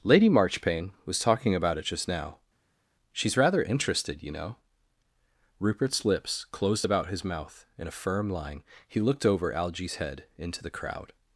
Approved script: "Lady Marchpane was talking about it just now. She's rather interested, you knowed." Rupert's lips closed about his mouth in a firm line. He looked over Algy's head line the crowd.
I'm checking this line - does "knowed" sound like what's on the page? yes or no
no